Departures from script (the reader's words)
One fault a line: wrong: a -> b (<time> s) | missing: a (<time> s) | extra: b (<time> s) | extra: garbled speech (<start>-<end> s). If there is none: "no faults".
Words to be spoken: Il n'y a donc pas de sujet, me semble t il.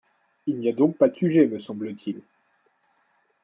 no faults